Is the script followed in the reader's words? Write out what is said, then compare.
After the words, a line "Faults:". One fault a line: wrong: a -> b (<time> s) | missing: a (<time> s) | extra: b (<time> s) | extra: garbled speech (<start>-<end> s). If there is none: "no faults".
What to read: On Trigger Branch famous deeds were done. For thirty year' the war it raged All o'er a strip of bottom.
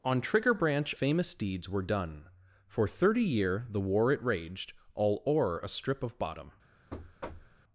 On Trigger Branch famous deeds were done. For thirty year' the war it raged All o'er a strip of bottom.
Faults:
no faults